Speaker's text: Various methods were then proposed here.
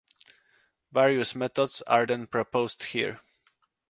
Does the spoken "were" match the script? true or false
false